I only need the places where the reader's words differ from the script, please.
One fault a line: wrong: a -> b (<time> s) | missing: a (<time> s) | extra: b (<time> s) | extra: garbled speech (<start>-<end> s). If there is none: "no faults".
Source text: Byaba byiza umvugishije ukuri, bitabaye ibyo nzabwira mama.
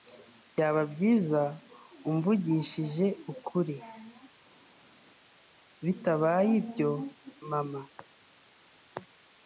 missing: nzabwira (6.9 s)